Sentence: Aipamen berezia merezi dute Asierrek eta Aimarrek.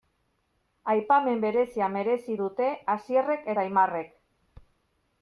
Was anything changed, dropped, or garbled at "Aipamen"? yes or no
no